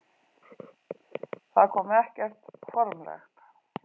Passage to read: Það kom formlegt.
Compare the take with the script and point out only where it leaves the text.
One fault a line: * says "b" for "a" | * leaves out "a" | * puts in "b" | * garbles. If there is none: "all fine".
* puts in "ekkert"